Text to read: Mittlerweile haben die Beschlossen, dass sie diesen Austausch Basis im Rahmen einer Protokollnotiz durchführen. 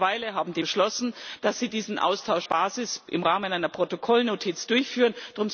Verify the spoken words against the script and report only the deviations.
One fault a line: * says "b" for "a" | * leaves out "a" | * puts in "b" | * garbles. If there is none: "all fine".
all fine